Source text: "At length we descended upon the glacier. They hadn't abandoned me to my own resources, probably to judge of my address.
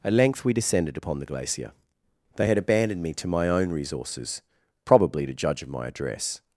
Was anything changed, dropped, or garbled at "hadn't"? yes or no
yes